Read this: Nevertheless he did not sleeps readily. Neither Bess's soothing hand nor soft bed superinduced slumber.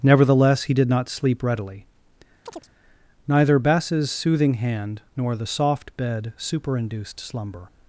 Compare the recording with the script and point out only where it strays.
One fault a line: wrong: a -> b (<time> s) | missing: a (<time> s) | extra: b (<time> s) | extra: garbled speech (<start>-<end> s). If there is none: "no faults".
wrong: sleeps -> sleep (1.1 s)
extra: the (5.4 s)